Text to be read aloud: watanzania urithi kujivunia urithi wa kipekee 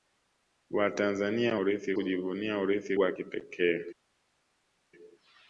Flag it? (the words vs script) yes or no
no